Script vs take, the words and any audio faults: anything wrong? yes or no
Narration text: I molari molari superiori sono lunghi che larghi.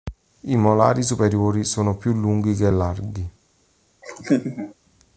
yes